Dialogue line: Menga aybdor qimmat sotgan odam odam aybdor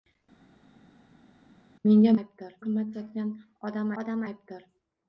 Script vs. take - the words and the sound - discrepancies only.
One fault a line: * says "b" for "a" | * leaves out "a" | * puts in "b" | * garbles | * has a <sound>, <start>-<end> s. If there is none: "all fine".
all fine